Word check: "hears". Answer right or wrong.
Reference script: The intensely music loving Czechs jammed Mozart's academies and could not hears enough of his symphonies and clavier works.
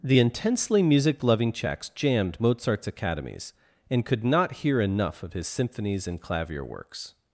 wrong